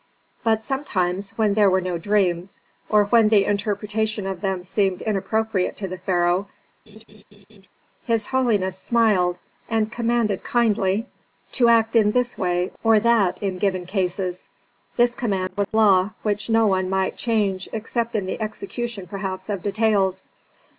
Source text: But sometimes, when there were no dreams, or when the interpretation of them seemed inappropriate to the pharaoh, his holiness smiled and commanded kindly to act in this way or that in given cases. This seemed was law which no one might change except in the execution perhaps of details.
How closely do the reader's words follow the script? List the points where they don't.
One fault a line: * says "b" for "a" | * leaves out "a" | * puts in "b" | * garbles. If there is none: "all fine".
* says "command" for "seemed"